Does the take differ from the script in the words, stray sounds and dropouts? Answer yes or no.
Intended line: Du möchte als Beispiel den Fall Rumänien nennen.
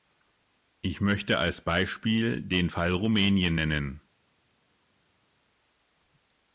yes